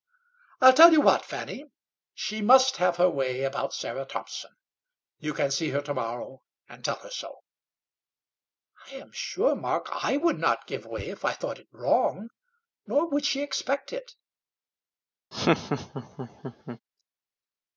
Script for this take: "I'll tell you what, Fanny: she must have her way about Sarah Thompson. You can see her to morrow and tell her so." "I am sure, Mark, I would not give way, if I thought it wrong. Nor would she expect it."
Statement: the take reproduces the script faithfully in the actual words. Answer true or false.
true